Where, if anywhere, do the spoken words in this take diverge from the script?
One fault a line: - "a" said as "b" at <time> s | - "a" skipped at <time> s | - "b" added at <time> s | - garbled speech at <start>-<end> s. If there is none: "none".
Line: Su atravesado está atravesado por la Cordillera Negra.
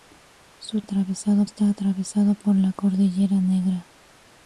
none